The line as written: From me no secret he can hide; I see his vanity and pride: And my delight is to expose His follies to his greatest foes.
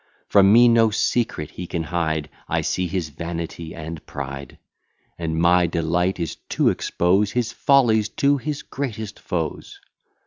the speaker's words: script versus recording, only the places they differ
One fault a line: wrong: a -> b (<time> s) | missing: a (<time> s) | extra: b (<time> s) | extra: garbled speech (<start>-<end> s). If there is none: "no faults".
no faults